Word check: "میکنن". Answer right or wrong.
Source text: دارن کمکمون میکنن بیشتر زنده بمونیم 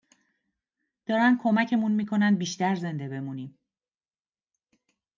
right